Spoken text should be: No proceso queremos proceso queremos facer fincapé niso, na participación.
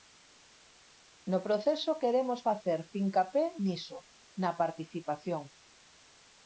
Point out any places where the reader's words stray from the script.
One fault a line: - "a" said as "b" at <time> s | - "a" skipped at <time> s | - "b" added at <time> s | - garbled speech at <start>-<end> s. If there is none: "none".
- "proceso queremos" skipped at 2.4 s